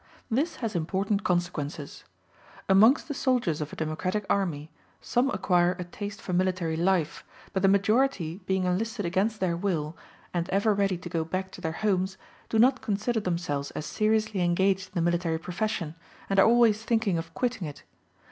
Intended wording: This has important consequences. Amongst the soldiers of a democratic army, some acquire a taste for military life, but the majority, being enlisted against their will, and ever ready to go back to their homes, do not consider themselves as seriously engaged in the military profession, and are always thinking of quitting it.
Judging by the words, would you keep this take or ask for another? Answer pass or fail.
pass